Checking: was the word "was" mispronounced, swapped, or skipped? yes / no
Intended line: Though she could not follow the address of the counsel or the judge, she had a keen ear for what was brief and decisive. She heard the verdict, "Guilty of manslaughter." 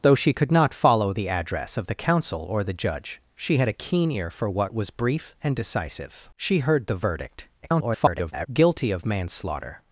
no